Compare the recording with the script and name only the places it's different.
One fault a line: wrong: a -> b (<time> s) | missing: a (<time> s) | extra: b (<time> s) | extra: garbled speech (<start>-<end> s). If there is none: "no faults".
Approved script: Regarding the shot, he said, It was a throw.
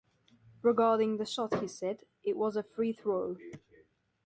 extra: free (2.6 s)